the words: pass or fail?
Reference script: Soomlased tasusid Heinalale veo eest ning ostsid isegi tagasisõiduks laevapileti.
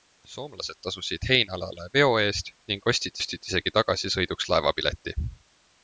fail